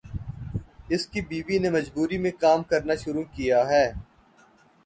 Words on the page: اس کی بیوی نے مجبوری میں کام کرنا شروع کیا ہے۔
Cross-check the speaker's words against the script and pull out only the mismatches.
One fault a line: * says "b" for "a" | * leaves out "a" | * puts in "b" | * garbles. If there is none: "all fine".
all fine